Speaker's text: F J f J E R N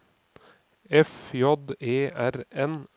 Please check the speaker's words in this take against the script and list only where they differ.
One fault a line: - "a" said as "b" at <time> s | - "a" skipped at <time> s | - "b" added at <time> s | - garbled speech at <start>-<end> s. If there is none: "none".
- "f J" skipped at 1.6 s